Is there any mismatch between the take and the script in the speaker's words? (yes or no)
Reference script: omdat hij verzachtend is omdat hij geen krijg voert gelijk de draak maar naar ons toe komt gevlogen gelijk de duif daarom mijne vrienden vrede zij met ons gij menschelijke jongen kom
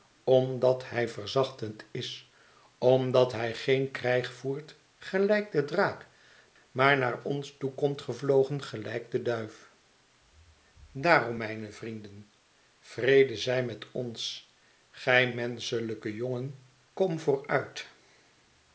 no